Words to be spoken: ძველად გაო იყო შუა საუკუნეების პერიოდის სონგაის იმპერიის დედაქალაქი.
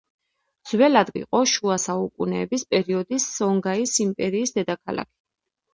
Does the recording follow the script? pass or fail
fail